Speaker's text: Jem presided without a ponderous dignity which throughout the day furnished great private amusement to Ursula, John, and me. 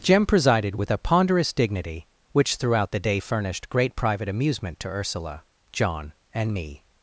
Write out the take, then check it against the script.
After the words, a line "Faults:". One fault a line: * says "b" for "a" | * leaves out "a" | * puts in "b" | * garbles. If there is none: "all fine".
Jem presided with a ponderous dignity which throughout the day furnished great private amusement to Ursula, John, and me.
Faults:
* says "with" for "without"